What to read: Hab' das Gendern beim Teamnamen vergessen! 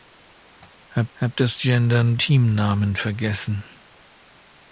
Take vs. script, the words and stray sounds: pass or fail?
fail